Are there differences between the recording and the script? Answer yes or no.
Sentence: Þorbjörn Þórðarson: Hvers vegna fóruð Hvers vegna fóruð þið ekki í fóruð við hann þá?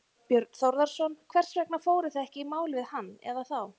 yes